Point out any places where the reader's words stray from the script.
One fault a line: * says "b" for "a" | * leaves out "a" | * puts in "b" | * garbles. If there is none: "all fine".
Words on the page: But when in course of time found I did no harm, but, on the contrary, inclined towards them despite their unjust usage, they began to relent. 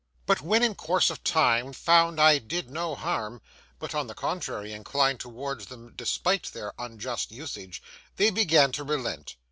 all fine